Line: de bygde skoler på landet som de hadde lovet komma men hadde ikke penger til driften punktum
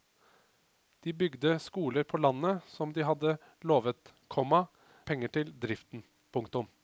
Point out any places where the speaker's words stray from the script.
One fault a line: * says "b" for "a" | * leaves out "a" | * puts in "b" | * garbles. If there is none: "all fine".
* leaves out "men hadde ikke"